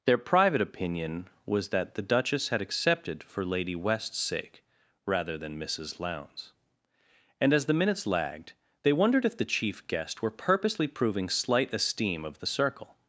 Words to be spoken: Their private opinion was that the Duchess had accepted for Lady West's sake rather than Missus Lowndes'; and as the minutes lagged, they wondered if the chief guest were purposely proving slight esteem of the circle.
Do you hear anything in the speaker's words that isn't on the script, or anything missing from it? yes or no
no